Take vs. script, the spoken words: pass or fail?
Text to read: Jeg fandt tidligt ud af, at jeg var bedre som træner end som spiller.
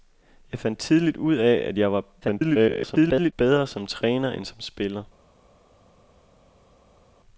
fail